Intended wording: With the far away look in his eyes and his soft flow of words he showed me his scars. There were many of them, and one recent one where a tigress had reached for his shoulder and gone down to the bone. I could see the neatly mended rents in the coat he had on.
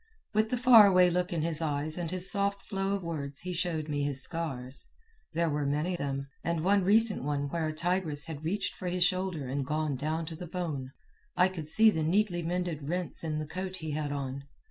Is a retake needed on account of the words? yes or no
yes